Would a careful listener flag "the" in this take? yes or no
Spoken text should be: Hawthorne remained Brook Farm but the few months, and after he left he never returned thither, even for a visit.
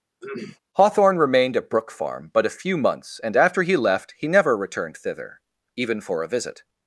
yes